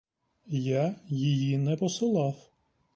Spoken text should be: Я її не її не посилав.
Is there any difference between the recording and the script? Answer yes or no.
yes